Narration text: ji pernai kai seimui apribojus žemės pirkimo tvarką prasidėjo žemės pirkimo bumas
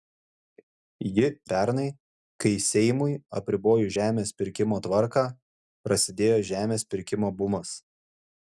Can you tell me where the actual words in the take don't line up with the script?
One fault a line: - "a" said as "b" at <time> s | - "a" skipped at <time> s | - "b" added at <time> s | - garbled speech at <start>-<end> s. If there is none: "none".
none